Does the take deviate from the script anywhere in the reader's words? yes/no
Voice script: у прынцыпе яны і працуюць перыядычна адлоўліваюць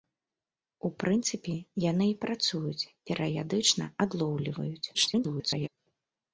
yes